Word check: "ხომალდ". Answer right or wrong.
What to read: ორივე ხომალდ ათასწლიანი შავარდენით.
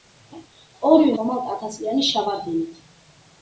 right